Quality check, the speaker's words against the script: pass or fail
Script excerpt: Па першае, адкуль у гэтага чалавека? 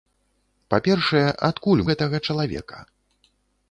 pass